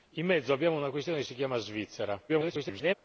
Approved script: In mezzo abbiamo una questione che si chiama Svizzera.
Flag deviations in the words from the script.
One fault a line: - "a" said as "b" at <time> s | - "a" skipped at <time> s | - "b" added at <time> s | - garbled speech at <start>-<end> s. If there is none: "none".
- garbled speech at 2.3-2.9 s